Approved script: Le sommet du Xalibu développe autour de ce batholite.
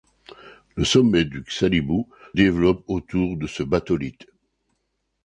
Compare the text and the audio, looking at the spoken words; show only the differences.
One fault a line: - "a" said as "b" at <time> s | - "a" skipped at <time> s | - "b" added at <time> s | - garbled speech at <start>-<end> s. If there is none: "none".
none